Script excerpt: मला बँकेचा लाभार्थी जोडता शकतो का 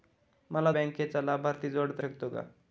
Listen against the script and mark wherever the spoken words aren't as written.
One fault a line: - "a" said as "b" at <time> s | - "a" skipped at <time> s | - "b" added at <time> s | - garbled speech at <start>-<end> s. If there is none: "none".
none